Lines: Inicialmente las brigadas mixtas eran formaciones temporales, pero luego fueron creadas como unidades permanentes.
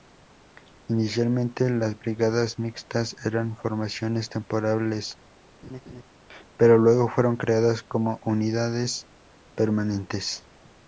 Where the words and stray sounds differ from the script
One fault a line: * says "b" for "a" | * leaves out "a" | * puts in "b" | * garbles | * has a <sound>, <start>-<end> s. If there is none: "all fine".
* has a laugh, 5.6-6.0 s